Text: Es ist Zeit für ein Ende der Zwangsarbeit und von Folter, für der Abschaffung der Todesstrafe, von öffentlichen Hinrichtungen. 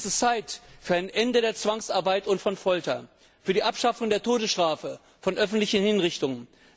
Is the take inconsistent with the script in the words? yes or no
yes